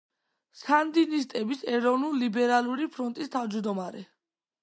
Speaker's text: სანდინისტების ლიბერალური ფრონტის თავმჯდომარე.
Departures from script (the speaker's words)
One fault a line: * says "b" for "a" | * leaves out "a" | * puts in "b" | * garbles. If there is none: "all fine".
* puts in "ეროვნულ"